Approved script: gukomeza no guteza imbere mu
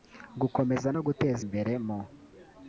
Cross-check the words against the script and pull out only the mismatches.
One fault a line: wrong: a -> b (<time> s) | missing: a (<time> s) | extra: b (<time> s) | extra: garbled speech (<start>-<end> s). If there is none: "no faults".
no faults